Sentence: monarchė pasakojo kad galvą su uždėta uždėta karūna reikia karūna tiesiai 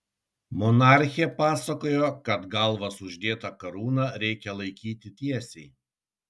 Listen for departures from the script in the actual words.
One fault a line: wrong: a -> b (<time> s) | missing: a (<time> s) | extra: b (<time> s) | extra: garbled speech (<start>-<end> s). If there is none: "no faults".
missing: uždėta (3.5 s)
wrong: karūna -> laikyti (4.6 s)